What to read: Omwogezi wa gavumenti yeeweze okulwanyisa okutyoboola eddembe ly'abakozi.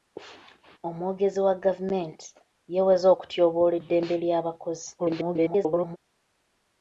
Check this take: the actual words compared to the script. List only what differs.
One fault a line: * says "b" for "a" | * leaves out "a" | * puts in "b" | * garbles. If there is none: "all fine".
* leaves out "okulwanyisa"
* garbles